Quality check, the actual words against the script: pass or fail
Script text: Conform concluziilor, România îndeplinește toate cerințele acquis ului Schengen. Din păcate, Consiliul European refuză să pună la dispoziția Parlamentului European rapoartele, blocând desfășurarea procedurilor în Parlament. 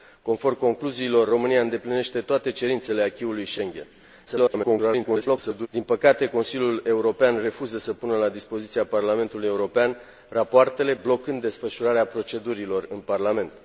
fail